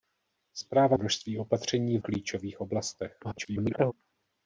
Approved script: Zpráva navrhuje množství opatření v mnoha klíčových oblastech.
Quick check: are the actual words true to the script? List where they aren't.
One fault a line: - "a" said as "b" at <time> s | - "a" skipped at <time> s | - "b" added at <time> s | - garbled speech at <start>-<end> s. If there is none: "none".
- "navrhuje" skipped at 1.0 s
- "v mnoha" skipped at 2.0 s
- garbled speech at 3.2-3.9 s